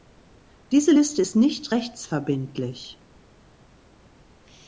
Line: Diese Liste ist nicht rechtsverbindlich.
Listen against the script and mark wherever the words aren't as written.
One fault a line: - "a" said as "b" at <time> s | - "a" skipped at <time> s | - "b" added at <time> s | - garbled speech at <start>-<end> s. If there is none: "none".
none